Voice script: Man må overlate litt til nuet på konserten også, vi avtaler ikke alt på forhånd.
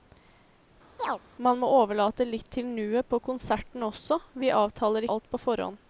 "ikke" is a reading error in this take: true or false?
true